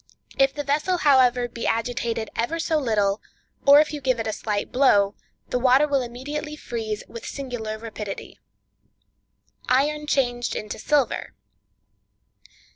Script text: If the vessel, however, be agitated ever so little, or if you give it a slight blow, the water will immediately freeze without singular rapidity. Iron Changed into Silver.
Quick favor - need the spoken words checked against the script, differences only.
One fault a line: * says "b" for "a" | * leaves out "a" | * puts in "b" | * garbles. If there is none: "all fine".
* says "with" for "without"